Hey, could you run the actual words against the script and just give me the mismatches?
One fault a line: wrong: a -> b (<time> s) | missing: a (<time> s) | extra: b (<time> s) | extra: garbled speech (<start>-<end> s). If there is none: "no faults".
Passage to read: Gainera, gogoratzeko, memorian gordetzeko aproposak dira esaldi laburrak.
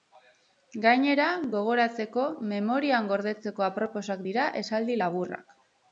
no faults